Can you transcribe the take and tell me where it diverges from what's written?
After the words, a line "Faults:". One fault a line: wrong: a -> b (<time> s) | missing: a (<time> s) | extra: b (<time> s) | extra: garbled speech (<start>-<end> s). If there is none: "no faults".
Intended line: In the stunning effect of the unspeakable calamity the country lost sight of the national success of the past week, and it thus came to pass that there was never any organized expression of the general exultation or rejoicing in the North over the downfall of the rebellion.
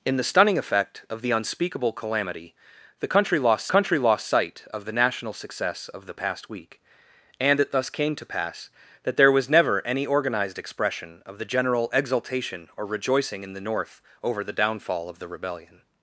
In the stunning effect of the unspeakable calamity the country lost country lost sight of the national success of the past week, and it thus came to pass that there was never any organized expression of the general exultation or rejoicing in the North over the downfall of the rebellion.
Faults:
extra: country lost (3.7 s)